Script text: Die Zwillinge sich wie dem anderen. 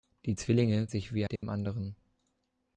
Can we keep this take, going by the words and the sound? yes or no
no